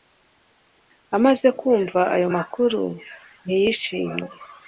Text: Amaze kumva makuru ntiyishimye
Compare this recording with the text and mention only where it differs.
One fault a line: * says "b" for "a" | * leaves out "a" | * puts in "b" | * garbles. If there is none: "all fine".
* puts in "ayo"